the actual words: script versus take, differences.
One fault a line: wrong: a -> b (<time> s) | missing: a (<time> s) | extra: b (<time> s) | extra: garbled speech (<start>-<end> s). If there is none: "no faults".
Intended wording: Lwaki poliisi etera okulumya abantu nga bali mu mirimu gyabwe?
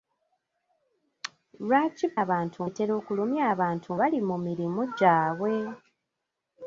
wrong: poliisi -> abantu (2.2 s)
missing: nga (3.9 s)